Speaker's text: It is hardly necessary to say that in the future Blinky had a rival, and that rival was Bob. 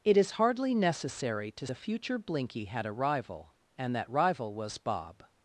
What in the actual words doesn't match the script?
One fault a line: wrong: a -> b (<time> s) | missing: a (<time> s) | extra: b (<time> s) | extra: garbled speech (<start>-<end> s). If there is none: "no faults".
missing: say that in (1.7 s)